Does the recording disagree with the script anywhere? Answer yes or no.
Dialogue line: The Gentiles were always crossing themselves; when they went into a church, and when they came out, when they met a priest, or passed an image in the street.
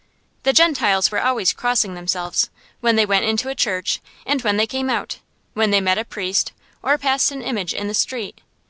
no